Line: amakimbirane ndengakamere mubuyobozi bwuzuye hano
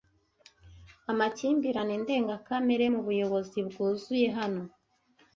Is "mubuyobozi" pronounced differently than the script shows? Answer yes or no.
no